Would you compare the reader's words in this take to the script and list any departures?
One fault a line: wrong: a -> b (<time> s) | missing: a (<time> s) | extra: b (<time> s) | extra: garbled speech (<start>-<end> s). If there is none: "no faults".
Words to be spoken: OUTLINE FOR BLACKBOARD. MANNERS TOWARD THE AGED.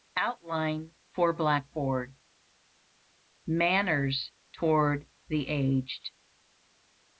no faults